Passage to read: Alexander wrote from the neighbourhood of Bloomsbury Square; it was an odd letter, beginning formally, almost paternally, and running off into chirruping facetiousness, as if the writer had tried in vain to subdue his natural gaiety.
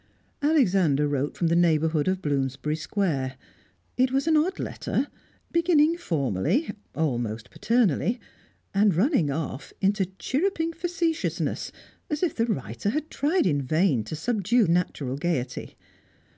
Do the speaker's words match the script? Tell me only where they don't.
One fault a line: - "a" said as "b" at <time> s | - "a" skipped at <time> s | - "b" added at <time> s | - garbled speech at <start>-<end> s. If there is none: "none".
- "his" skipped at 14.7 s